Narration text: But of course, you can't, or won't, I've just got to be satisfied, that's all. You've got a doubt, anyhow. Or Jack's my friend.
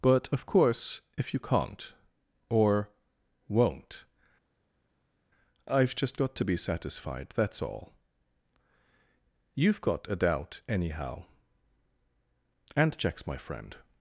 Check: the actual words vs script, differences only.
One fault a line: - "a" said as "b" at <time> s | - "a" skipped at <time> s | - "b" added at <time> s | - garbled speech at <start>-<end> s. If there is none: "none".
- "if" added at 1.2 s
- "Or" said as "And" at 12.8 s